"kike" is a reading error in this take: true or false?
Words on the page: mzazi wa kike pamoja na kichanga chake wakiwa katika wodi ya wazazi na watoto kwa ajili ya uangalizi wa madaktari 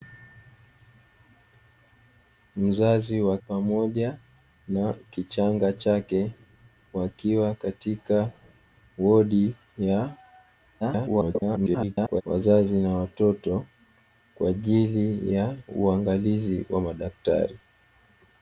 true